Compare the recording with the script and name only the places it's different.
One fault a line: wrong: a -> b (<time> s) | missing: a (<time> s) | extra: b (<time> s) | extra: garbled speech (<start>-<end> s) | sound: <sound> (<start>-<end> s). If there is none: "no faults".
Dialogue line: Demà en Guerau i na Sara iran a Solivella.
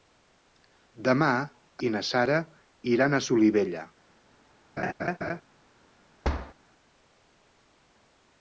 missing: en Guerau (1.3 s)
sound: laugh (4.8-5.4 s)
sound: thud (6.2-6.5 s)